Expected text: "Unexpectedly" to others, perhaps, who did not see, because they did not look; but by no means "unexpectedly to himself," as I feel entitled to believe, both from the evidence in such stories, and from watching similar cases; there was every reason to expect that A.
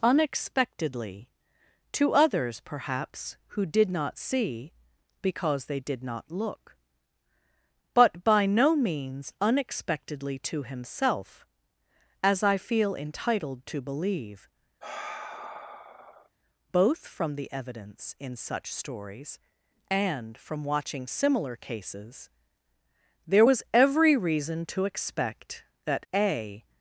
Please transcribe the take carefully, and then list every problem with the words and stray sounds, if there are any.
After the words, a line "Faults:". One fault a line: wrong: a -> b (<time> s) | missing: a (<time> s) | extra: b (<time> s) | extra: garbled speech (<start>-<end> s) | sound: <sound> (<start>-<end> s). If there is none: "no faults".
"Unexpectedly" to others, perhaps, who did not see, because they did not look; but by no means "unexpectedly to himself," as I feel entitled to believe, both from the evidence in such stories, and from watching similar cases; there was every reason to expect that A.
Faults:
sound: sigh (14.8-16.3 s)